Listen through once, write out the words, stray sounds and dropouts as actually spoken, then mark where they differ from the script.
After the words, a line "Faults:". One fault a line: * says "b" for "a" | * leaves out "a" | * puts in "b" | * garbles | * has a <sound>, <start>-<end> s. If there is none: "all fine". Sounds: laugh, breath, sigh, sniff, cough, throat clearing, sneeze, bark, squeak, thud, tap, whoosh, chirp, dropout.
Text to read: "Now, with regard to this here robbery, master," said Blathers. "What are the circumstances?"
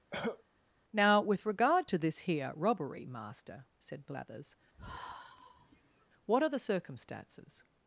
"Now, with regard to this here robbery, master," said Blathers. "What are the circumstances?"
Faults:
* has a cough, 0.1-0.4 s
* has a sigh, 4.7-6.1 s